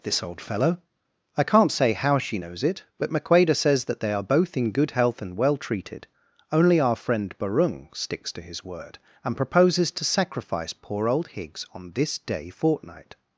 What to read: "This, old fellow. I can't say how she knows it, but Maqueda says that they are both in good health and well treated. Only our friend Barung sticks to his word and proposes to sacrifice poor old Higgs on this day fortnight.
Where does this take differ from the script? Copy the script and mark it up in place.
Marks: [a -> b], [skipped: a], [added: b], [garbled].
"This, old fellow. I can't say how she knows it, but Maqueda says that they are both in good health and well treated. Only our friend Barung sticks to his word and proposes to sacrifice poor old Higgs on this day fortnight.